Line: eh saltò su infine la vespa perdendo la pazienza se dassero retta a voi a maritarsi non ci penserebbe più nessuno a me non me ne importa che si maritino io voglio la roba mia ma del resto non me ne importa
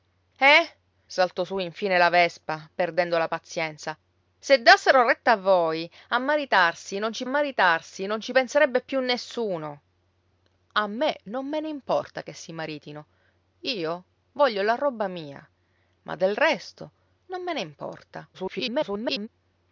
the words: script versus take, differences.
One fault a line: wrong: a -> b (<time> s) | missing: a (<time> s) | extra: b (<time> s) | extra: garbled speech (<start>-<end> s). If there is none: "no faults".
extra: maritarsi non ci (7.2 s)
extra: garbled speech (18.3-19.3 s)